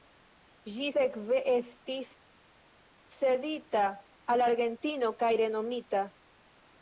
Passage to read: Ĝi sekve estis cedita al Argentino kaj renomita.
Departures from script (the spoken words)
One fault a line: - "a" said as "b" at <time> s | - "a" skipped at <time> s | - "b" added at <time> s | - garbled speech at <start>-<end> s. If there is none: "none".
none